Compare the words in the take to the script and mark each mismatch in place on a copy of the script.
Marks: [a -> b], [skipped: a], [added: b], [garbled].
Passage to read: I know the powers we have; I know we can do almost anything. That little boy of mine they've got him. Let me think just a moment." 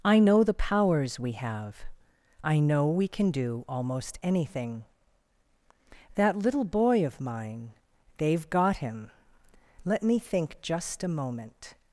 I know the powers we have; I know we can do almost anything. That little boy of mine they've got him. Let me think just a moment."